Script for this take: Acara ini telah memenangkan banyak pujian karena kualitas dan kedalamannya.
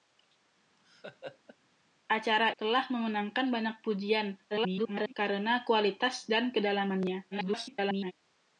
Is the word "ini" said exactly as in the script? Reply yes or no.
no